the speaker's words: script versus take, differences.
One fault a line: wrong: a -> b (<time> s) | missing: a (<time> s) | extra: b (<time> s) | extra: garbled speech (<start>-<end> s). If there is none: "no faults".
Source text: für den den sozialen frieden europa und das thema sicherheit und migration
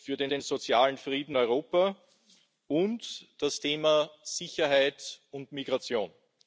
no faults